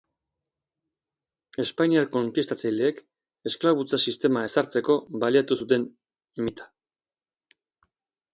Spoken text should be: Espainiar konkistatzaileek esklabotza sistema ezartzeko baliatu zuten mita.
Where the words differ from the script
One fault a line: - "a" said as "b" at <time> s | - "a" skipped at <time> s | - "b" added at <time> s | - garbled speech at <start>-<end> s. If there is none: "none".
none